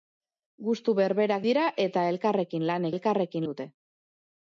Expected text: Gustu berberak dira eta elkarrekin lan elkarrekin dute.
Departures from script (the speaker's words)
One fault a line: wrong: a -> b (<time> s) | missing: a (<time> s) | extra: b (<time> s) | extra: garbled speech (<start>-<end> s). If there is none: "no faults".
no faults